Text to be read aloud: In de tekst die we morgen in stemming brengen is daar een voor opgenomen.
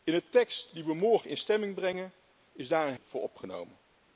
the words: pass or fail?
pass